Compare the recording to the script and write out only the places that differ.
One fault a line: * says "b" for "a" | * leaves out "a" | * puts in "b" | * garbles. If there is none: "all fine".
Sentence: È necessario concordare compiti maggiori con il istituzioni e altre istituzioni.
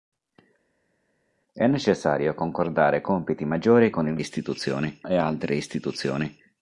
all fine